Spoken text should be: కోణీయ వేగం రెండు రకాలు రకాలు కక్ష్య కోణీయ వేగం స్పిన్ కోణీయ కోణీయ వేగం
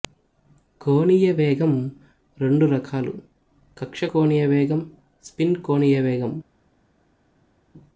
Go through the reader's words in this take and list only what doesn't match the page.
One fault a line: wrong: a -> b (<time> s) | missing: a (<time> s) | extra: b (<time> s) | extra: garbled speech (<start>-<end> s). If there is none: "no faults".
missing: రకాలు (3.1 s)
missing: కోణీయ (6.0 s)